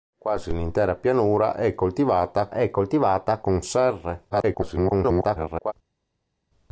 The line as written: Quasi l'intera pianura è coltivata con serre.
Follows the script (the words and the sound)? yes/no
no